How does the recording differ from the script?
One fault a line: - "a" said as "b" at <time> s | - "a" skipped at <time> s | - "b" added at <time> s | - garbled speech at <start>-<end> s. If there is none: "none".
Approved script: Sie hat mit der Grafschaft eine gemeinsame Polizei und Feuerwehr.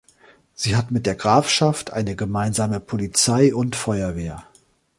none